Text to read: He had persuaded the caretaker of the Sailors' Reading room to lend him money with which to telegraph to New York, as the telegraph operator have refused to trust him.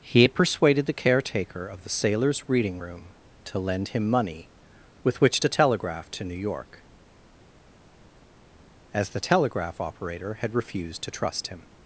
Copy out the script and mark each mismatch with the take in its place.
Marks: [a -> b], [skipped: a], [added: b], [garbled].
He had persuaded the caretaker of the Sailors' Reading room to lend him money with which to telegraph to New York, as the telegraph operator [have -> had] refused to trust him.